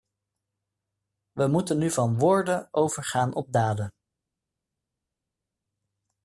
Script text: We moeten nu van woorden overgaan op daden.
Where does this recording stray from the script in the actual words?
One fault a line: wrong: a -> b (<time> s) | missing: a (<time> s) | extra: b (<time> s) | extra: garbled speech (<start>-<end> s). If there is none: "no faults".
no faults